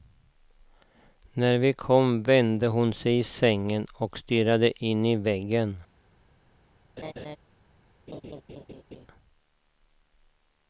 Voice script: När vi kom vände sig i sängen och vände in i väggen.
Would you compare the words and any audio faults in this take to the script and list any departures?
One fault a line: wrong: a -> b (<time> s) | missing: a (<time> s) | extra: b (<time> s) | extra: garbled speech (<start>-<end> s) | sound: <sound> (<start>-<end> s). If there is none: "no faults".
extra: hon (2.7 s)
wrong: vände -> stirrade (4.2 s)
sound: laugh (7.0-7.4 s)
sound: laugh (8.1-9.1 s)